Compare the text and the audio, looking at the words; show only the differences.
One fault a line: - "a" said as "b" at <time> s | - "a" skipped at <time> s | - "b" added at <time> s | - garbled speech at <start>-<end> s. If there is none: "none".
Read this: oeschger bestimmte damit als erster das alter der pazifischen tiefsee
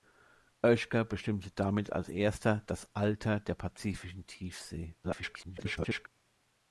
- garbled speech at 5.0-6.1 s